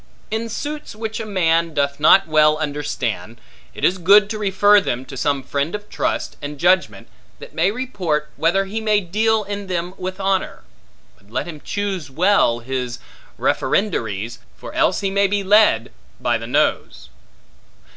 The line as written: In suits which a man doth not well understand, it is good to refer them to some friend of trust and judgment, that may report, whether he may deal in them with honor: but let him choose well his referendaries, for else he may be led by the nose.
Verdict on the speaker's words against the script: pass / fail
pass